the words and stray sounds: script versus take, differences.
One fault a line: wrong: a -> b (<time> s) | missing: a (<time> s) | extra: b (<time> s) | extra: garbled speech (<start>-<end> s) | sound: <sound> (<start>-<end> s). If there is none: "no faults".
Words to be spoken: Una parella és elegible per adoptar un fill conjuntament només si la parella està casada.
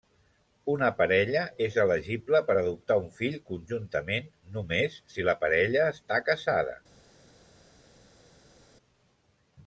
no faults